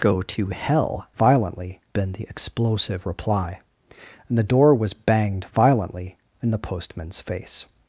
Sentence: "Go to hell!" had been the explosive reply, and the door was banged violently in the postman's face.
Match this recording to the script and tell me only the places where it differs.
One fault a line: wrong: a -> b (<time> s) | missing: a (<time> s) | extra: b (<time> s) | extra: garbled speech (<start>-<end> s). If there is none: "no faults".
wrong: had -> violently (1.1 s)